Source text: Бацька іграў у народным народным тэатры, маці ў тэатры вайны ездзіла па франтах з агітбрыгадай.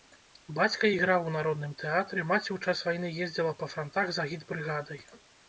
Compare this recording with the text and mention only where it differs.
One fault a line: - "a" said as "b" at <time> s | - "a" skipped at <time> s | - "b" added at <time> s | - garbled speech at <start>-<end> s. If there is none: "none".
- "народным" skipped at 1.7 s
- "тэатры" said as "час" at 2.6 s